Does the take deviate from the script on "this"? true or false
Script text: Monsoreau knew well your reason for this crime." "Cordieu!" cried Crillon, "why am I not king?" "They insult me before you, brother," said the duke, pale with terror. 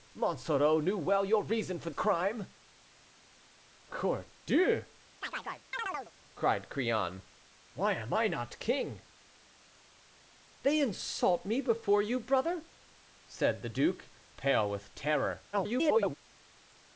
true